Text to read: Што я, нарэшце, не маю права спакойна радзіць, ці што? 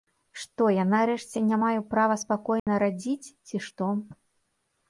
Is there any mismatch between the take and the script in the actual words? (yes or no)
no